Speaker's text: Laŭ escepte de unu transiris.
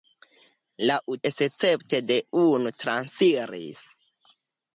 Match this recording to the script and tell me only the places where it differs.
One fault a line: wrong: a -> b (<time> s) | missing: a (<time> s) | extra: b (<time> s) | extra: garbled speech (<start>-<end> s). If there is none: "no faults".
no faults